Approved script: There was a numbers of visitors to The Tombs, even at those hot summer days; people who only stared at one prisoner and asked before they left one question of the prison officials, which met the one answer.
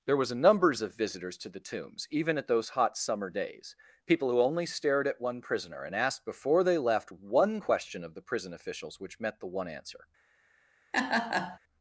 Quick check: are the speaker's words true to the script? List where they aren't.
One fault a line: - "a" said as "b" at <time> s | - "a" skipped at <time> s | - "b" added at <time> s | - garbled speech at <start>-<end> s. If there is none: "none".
none